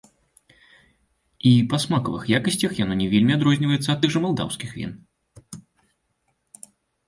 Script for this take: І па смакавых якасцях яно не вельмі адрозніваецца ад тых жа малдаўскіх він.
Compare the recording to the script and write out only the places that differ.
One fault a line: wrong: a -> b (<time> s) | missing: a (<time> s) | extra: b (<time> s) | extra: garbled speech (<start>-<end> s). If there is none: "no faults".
no faults